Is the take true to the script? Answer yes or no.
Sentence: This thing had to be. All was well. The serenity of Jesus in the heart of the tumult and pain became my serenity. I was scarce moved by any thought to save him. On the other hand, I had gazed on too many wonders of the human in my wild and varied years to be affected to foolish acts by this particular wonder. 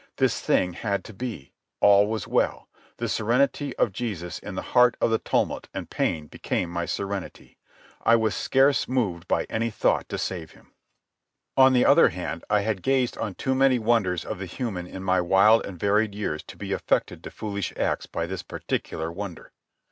yes